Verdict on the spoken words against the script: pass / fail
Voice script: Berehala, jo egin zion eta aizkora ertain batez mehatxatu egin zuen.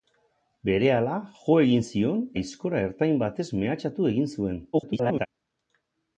fail